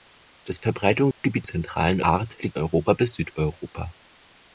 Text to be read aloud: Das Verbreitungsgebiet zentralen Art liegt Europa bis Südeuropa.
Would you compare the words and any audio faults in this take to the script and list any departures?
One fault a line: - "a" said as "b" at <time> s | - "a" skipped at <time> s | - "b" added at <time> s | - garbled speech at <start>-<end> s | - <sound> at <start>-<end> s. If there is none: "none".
- dropout at 1.1-1.2 s